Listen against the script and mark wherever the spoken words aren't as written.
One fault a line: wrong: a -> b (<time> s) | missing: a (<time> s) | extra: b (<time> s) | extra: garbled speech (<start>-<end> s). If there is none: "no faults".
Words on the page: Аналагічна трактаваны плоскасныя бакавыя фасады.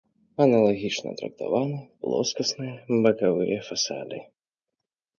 no faults